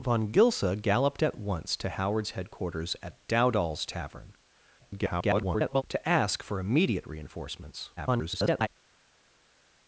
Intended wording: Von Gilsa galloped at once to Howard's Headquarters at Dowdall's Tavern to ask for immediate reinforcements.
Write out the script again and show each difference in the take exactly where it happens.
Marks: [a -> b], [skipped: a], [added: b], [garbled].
Von Gilsa galloped at once to Howard's Headquarters at Dowdall's Tavern [garbled] to ask for immediate reinforcements. [garbled]